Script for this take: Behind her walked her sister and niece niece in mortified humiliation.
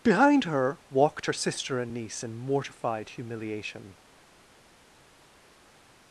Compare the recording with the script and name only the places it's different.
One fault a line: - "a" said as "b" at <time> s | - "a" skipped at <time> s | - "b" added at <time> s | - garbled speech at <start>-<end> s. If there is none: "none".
- "niece" skipped at 2.2 s